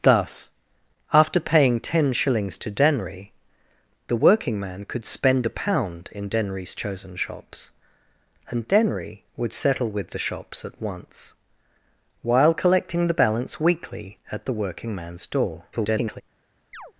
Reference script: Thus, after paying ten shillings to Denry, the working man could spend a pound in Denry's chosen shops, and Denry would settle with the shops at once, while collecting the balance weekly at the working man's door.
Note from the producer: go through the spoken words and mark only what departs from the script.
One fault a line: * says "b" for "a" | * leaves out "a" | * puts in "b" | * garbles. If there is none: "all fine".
* garbles